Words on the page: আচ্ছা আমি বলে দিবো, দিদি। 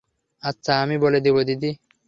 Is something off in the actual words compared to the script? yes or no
no